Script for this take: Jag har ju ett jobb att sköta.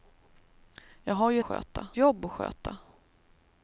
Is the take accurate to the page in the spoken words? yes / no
no